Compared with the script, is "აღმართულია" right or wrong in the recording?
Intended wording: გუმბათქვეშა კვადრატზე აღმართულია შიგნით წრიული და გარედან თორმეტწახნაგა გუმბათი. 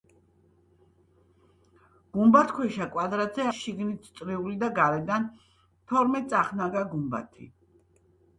wrong